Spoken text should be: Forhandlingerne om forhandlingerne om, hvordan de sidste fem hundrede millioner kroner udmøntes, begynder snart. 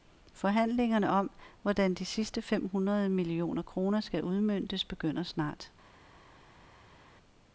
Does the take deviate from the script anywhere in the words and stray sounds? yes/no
yes